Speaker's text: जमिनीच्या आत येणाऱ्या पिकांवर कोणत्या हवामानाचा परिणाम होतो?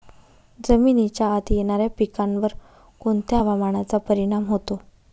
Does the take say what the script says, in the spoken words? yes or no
yes